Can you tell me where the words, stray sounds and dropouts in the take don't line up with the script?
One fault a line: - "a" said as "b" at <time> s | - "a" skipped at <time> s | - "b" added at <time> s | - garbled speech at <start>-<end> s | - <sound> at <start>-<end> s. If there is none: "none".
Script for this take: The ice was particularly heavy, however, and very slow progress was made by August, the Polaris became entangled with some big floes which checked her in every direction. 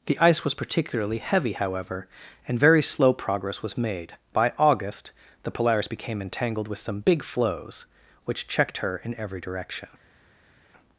none